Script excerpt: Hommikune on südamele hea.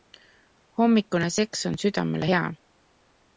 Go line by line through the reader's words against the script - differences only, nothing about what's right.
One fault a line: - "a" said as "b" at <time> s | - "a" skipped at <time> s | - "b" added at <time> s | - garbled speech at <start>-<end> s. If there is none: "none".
- "seks" added at 1.4 s